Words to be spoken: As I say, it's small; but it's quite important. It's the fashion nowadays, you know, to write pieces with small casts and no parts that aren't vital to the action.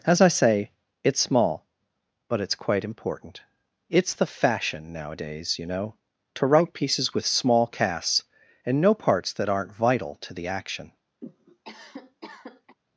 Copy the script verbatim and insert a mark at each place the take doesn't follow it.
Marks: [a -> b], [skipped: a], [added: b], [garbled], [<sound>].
As I say, it's small; but it's quite important. It's the fashion nowadays, you know, to write pieces with small casts and no parts that aren't vital to the action. [cough]